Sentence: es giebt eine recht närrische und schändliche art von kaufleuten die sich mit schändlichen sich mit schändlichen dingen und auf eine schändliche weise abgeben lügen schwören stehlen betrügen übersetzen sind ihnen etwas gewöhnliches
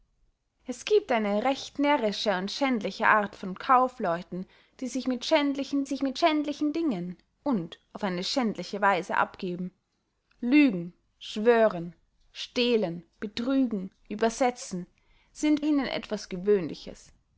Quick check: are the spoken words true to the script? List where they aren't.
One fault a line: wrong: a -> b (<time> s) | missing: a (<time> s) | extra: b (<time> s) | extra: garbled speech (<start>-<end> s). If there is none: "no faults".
no faults